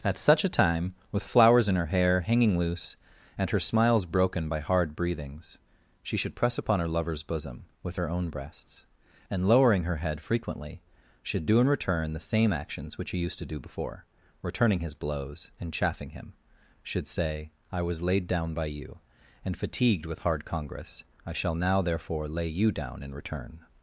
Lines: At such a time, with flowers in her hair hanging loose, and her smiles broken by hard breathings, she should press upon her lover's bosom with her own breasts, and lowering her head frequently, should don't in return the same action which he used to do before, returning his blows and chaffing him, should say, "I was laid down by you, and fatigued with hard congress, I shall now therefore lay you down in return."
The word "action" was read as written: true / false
false